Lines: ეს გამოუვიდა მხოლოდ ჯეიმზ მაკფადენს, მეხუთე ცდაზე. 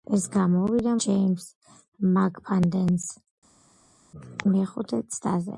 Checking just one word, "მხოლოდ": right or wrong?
wrong